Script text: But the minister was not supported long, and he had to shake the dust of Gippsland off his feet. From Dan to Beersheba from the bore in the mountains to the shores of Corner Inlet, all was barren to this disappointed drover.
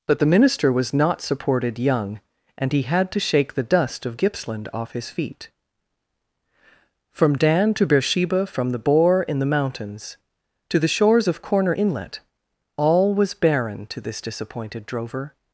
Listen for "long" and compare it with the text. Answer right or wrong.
wrong